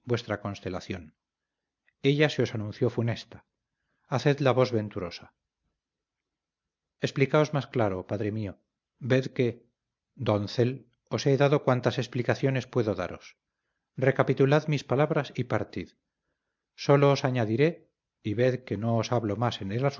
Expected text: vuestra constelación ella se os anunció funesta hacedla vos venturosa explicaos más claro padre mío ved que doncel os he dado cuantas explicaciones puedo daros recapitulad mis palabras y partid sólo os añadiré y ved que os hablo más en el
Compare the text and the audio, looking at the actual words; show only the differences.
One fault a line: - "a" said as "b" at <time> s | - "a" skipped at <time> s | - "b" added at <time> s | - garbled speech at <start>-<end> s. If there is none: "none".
- "no" added at 18.8 s